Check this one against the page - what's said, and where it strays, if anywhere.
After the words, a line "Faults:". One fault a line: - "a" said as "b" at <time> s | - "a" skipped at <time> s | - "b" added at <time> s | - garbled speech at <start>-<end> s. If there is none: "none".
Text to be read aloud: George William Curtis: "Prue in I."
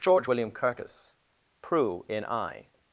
George William Curtis: "Prue in I."
Faults:
none